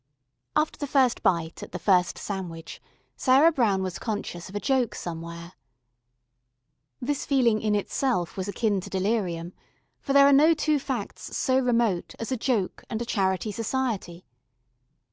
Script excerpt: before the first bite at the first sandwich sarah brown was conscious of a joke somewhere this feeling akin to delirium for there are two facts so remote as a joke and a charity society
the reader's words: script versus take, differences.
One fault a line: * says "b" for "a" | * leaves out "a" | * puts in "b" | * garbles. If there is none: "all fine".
* says "after" for "before"
* puts in "in itself was"
* puts in "no"